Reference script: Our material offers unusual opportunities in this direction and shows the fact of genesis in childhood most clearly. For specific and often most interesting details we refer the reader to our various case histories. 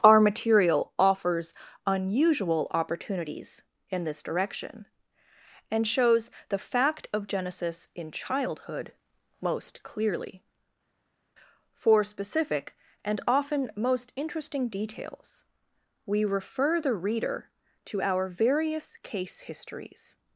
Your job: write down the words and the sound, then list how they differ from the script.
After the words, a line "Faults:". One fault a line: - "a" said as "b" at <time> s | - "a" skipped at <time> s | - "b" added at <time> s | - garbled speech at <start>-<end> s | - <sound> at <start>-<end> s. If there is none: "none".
Our material offers unusual opportunities in this direction and shows the fact of genesis in childhood most clearly. For specific and often most interesting details we refer the reader to our various case histories.
Faults:
none